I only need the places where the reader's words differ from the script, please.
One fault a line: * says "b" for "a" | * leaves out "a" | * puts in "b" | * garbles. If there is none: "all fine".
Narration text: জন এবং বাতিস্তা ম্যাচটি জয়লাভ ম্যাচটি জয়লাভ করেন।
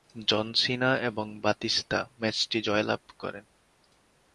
* puts in "সিনা"
* leaves out "ম্যাচটি জয়লাভ"